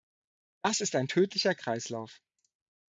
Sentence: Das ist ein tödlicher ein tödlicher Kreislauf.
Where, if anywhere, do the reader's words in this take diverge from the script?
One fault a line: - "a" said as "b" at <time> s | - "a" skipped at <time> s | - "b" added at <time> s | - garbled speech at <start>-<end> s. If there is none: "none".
- "ein tödlicher" skipped at 1.5 s